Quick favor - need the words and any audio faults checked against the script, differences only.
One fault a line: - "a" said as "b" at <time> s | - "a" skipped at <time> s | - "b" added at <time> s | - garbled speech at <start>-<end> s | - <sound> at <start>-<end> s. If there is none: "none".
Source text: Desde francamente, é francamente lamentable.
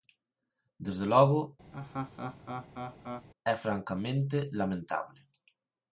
- "francamente" said as "logo" at 1.1 s
- laugh at 1.7-3.3 s